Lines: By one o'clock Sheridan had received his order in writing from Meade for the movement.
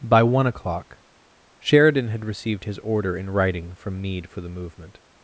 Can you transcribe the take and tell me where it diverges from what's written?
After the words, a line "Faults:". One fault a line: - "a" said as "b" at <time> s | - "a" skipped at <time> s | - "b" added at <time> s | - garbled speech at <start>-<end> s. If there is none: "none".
By one o'clock Sheridan had received his order in writing from Meade for the movement.
Faults:
none